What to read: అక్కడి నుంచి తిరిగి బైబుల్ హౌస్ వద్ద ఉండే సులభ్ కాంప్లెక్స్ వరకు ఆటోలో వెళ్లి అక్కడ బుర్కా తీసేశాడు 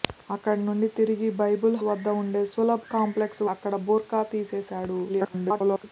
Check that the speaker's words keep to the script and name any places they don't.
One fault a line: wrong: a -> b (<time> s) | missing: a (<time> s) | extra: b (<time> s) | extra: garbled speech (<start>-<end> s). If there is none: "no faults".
missing: హౌస్ (1.8 s)
missing: వరకు ఆటోలో వెళ్లి (3.4 s)
extra: garbled speech (5.1-5.8 s)